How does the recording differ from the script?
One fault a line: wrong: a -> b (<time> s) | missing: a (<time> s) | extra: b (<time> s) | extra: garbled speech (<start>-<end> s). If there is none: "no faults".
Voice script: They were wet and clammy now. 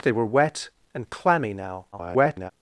extra: garbled speech (1.9-2.5 s)